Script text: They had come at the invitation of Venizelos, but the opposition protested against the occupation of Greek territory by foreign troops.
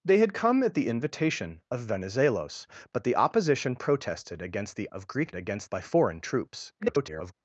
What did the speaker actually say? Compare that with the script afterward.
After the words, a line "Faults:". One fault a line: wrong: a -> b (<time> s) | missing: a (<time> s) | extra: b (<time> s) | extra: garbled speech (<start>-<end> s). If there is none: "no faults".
They had come at the invitation of Venizelos, but the opposition protested against the of Greek against by foreign troops. [garbled]
Faults:
missing: occupation (4.9 s)
wrong: territory -> against (5.3 s)
extra: garbled speech (6.8-7.3 s)